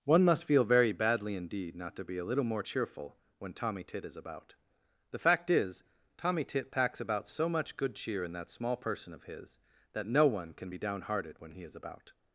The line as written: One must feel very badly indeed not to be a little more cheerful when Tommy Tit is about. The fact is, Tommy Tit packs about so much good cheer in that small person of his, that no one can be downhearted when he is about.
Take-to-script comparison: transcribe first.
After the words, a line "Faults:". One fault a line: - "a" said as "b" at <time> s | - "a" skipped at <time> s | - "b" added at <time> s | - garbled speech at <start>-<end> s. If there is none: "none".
One must feel very badly indeed not to be a little more cheerful when Tommy Tit is about. The fact is, Tommy Tit packs about so much good cheer in that small person of his, that no one can be downhearted when he is about.
Faults:
none